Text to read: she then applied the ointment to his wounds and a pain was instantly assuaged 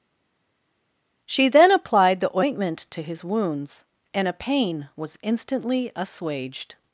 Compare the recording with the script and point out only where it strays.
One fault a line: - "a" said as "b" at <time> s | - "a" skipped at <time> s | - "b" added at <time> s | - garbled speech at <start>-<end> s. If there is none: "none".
none